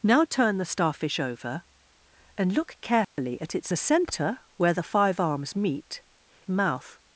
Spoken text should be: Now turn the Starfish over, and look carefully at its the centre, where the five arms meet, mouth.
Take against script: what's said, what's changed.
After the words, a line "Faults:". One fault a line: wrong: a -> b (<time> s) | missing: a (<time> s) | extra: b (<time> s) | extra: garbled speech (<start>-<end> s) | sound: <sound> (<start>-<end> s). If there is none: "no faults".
Now turn the Starfish over, and look carefully at its the centre, where the five arms meet, mouth.
Faults:
sound: dropout (3.0-3.2 s)